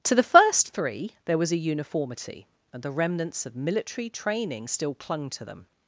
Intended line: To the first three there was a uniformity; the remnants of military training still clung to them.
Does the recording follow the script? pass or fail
fail